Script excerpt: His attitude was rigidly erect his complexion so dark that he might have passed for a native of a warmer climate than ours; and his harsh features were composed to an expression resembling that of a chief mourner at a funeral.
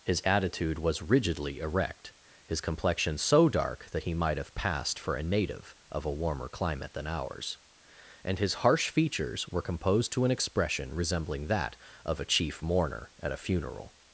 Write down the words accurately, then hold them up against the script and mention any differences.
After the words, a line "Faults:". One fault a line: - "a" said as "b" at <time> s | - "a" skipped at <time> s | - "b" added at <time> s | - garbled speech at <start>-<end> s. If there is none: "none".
His attitude was rigidly erect his complexion so dark that he might have passed for a native of a warmer climate than ours; and his harsh features were composed to an expression resembling that of a chief mourner at a funeral.
Faults:
none